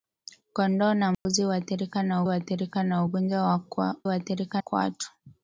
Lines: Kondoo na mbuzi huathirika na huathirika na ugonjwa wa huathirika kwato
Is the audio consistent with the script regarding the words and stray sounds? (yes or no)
no